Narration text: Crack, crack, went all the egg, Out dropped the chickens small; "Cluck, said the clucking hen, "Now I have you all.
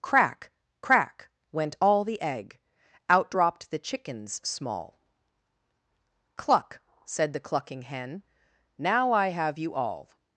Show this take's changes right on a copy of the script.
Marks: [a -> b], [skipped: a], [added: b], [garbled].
Crack, crack, went all the egg, Out dropped the chickens small; "Cluck, said the clucking hen, "Now I have you all.